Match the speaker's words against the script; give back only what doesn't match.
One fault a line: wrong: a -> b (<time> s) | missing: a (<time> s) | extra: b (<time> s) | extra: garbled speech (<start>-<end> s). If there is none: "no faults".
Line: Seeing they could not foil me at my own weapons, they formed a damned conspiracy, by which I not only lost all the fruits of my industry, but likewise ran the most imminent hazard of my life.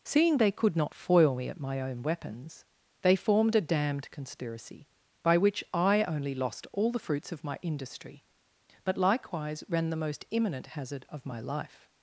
missing: not (6.0 s)